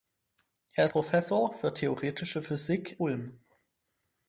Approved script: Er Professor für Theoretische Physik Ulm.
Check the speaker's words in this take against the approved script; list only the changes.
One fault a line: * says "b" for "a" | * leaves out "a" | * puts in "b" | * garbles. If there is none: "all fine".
all fine